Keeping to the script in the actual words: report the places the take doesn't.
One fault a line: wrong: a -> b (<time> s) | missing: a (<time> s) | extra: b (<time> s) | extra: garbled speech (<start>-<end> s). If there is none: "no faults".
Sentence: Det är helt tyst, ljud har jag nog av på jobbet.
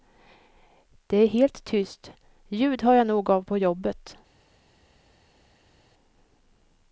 no faults